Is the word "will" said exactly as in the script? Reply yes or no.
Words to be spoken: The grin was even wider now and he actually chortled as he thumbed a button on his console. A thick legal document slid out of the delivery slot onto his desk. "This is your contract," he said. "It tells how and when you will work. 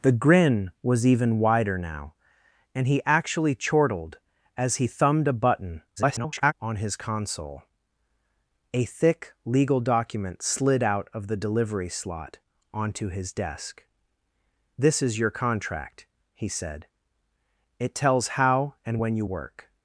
no